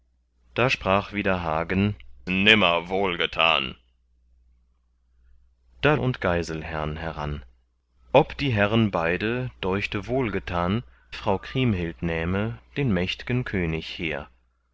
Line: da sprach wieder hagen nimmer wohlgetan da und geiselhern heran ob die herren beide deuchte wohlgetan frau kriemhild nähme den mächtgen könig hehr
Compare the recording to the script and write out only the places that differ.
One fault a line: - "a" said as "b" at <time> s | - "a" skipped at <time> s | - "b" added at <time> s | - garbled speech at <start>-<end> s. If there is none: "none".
none